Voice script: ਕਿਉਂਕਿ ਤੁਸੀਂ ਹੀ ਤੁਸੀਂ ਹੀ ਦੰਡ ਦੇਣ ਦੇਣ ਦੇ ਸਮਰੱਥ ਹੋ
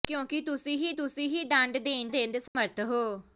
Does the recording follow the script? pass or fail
pass